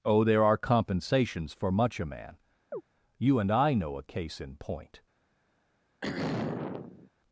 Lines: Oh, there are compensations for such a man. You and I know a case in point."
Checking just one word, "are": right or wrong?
right